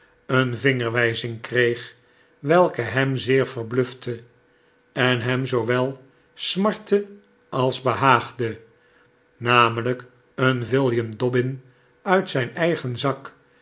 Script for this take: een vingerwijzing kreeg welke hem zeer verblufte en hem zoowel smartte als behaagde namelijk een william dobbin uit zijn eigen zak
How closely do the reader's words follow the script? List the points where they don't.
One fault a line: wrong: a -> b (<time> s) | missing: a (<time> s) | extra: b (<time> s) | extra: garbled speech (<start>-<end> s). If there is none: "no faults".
no faults